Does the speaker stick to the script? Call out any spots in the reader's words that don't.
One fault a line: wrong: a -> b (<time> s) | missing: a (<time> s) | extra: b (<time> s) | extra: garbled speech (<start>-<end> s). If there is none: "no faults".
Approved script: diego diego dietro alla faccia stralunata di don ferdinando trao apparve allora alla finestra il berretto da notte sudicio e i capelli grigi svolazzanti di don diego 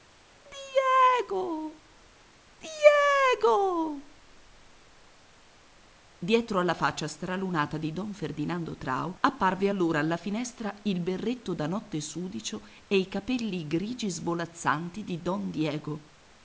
no faults